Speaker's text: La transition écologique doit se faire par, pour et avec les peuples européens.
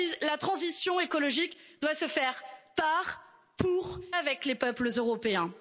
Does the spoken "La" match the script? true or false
true